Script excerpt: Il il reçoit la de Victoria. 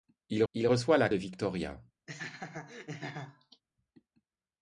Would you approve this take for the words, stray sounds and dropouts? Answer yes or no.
no